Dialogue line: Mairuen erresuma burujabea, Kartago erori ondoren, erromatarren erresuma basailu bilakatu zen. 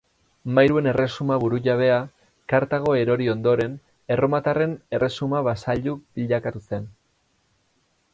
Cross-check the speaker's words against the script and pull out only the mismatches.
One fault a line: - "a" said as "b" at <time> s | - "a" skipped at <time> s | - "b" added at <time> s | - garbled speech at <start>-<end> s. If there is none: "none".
none